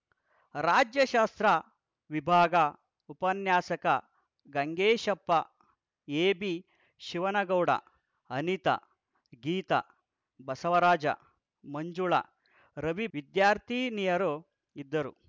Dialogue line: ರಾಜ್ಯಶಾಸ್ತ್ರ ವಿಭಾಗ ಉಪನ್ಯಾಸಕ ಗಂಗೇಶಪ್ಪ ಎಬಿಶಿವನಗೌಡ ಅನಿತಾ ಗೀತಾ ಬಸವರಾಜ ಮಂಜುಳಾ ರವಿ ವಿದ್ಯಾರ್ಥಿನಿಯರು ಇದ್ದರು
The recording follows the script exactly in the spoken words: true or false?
true